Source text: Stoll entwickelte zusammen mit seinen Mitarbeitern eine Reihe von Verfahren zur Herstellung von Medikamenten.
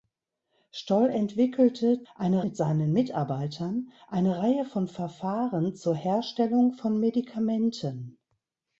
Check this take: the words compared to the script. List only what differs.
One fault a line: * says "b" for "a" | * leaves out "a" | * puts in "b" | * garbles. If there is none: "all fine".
* says "eine" for "zusammen"